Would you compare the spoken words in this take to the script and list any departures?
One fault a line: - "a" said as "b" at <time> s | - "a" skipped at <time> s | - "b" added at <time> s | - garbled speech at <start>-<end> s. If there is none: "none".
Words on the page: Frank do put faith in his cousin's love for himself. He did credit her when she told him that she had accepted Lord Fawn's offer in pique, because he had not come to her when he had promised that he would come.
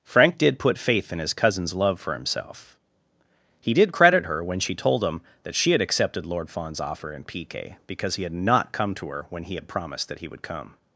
- "do" said as "did" at 0.4 s